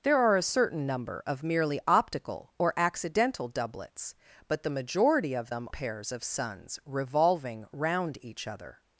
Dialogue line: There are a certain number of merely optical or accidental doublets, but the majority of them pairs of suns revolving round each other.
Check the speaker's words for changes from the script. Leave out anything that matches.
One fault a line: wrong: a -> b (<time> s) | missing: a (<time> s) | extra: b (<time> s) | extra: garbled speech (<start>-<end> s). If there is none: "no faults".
no faults